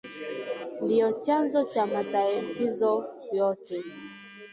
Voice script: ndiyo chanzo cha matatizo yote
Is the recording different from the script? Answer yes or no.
no